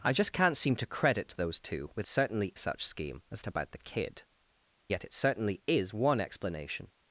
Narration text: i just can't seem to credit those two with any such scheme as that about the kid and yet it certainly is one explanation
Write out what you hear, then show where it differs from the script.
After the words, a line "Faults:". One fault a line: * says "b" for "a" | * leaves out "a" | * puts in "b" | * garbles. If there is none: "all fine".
i just can't seem to credit those two with certainly such scheme as about the kid yet it certainly is one explanation
Faults:
* says "certainly" for "any"
* leaves out "that"
* leaves out "and"